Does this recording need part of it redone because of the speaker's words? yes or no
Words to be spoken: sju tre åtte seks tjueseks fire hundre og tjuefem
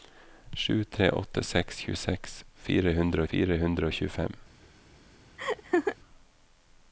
yes